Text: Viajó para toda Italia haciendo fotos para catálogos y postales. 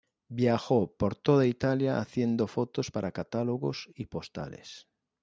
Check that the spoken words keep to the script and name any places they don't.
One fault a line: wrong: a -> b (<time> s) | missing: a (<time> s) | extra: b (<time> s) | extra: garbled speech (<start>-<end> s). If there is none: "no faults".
wrong: para -> por (0.9 s)